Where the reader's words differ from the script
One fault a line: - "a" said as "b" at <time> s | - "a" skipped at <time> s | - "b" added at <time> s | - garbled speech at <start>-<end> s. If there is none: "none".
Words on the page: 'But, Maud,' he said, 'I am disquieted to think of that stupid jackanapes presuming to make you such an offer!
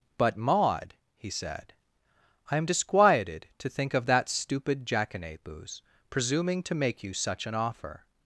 none